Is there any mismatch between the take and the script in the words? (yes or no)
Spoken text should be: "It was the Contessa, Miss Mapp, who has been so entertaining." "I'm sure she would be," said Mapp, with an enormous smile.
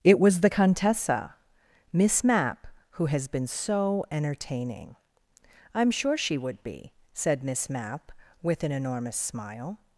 yes